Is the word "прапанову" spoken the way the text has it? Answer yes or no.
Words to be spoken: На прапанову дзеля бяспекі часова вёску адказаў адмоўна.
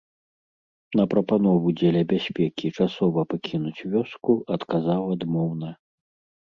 yes